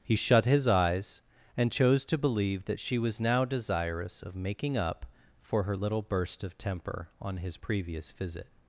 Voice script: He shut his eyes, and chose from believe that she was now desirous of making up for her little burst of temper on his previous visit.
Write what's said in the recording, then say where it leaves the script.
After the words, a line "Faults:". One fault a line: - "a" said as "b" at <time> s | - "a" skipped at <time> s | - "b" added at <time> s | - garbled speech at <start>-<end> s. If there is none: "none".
He shut his eyes, and chose to believe that she was now desirous of making up for her little burst of temper on his previous visit.
Faults:
- "from" said as "to" at 2.1 s